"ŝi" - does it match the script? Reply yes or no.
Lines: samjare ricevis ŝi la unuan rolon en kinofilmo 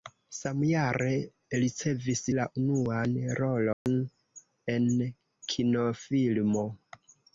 no